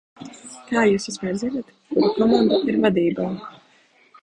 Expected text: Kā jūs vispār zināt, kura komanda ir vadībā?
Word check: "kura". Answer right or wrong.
right